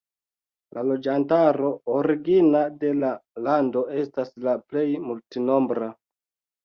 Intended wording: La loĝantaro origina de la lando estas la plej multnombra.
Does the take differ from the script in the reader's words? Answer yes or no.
no